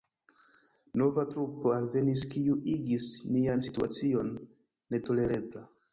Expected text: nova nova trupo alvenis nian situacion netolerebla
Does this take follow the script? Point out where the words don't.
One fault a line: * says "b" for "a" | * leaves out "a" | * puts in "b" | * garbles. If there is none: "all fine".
* leaves out "nova"
* puts in "kiu igis"